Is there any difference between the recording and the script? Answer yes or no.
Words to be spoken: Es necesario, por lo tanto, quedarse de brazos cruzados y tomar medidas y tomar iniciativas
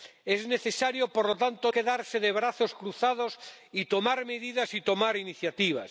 no